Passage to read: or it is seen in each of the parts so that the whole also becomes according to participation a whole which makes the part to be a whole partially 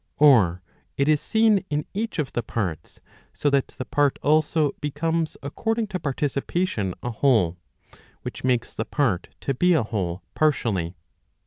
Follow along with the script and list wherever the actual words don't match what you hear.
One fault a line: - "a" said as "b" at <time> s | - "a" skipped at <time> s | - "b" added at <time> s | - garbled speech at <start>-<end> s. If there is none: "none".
- "whole" said as "part" at 3.8 s